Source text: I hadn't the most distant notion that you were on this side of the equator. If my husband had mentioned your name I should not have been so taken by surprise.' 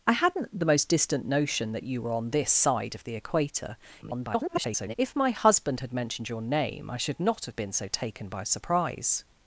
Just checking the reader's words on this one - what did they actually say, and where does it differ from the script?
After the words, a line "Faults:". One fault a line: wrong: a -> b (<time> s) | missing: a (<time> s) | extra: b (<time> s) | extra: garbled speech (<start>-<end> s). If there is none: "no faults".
I hadn't the most distant notion that you were on this side of the equator. [garbled] If my husband had mentioned your name I should not have been so taken by surprise.'
Faults:
extra: garbled speech (4.0-4.9 s)